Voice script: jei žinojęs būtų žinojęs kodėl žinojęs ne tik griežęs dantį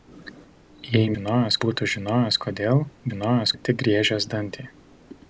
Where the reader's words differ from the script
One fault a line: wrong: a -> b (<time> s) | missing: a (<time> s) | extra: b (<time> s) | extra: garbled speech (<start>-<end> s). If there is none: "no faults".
no faults